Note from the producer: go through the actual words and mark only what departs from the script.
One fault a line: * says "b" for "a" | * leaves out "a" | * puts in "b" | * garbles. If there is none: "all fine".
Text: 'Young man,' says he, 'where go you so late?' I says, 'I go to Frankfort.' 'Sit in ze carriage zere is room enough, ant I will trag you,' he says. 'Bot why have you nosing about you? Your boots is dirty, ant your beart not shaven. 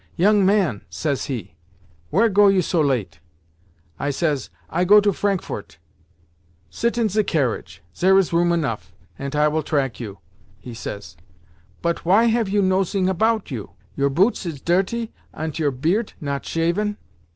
all fine